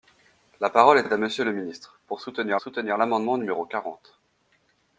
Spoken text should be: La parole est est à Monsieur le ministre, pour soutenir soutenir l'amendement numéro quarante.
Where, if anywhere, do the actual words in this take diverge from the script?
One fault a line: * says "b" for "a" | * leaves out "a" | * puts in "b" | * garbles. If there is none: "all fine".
all fine